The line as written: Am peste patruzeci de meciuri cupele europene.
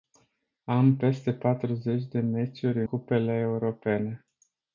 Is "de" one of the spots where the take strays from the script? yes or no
no